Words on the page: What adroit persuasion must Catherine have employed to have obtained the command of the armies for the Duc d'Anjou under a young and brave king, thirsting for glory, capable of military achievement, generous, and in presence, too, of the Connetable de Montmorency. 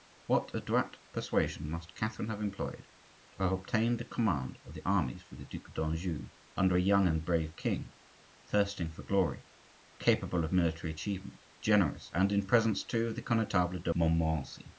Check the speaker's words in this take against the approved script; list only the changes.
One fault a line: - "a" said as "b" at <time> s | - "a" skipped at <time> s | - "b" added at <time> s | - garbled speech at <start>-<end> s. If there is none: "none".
none